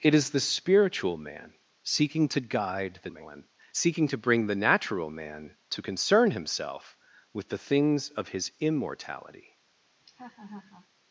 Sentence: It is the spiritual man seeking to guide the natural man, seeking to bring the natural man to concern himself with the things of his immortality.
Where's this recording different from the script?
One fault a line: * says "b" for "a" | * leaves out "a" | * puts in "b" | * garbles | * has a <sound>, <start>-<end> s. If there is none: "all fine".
* leaves out "natural"
* has a laugh, 10.0-10.9 s